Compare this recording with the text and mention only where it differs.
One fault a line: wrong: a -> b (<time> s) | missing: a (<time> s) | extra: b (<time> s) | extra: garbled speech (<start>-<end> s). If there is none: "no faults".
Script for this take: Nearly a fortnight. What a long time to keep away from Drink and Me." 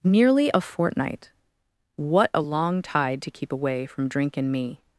wrong: time -> tide (2.8 s)